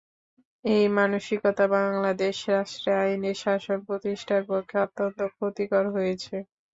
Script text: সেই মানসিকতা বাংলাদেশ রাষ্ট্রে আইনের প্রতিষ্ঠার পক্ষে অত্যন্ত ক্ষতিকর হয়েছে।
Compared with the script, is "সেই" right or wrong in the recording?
wrong